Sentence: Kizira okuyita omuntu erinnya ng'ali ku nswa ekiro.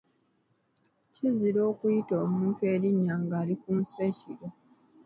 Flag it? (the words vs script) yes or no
no